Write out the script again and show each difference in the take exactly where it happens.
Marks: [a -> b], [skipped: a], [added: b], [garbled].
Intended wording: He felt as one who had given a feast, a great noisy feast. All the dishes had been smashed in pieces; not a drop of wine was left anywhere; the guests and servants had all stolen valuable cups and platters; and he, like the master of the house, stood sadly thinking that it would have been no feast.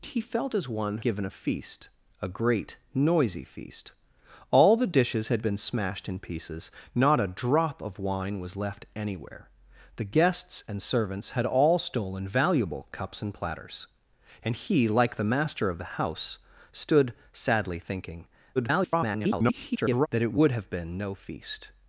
He felt as one [skipped: who had] given a feast, a great noisy feast. All the dishes had been smashed in pieces; not a drop of wine was left anywhere; the guests and servants had all stolen valuable cups and platters; and he, like the master of the house, stood sadly thinking [garbled] that it would have been no feast.